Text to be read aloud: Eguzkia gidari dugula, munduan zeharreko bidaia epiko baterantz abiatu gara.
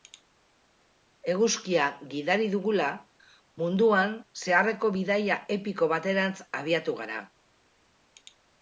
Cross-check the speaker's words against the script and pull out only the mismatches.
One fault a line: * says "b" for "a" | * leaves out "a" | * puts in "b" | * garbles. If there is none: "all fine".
all fine